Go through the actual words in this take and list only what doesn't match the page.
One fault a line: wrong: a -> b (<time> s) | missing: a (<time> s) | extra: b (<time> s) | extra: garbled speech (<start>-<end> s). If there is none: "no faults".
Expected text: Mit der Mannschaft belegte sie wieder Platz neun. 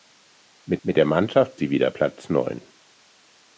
extra: mit (0.8 s)
missing: belegte (1.6 s)